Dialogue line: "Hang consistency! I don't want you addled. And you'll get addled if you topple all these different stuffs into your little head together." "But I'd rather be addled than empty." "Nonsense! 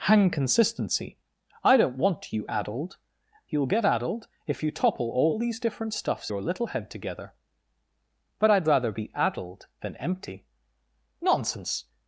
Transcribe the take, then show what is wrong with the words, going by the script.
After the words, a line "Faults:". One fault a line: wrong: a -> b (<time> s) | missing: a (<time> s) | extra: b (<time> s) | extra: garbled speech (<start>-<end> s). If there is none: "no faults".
"Hang consistency! I don't want you addled. You'll get addled if you topple all these different stuffs your little head together." "But I'd rather be addled than empty." "Nonsense!
Faults:
missing: And (3.0 s)
missing: into (6.3 s)